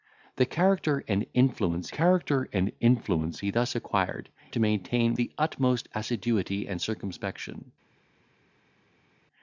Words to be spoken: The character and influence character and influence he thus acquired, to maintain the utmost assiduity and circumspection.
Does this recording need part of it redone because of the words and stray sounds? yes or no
no